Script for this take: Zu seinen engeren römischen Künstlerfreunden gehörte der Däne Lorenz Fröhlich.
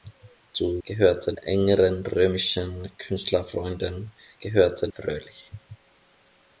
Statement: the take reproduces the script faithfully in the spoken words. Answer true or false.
false